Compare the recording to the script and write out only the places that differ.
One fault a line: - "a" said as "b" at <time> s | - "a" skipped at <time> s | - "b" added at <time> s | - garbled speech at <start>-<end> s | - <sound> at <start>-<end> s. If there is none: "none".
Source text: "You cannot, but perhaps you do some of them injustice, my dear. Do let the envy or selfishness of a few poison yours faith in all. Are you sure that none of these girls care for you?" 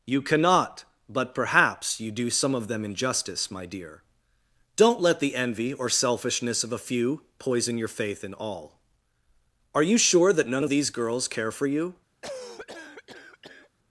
- "Do" said as "Don't" at 4.8 s
- "yours" said as "your" at 7.8 s
- cough at 12.2-13.7 s